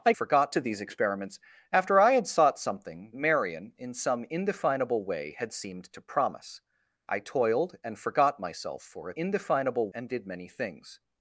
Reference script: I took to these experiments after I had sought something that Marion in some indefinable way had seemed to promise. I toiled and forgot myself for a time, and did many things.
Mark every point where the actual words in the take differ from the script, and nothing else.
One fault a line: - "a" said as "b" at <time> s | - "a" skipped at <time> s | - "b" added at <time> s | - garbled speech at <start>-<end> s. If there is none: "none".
- "took" said as "forgot" at 0.1 s
- "that" skipped at 3.1 s
- "time" said as "indefinable" at 9.1 s